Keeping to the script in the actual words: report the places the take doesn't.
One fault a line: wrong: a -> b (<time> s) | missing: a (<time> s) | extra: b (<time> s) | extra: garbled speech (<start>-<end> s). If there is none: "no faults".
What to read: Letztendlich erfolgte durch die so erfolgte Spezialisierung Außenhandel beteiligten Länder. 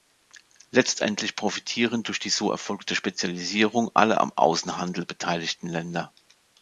wrong: erfolgte -> profitieren (1.4 s)
extra: alle am (3.9 s)